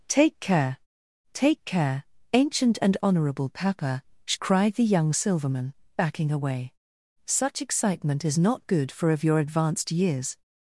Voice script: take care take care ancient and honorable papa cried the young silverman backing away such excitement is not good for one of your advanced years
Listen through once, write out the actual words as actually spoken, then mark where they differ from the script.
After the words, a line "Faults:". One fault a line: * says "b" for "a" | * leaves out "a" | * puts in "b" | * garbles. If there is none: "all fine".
take care take care ancient and honorable papa cried the young silverman backing away such excitement is not good for of your advanced years
Faults:
* leaves out "one"